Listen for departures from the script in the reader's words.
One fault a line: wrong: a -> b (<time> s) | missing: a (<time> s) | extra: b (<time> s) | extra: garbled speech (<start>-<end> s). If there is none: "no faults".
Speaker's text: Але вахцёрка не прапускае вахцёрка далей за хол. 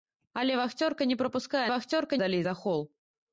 no faults